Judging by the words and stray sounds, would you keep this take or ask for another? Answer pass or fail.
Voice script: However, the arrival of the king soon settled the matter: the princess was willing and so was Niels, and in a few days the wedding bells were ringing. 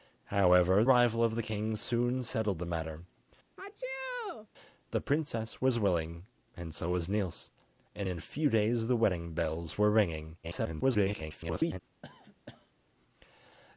fail